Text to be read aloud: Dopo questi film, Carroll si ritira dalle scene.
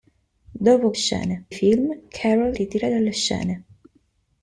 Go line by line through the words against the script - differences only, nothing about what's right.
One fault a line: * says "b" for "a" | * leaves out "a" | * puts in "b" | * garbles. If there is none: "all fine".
* says "scene" for "questi"
* leaves out "si"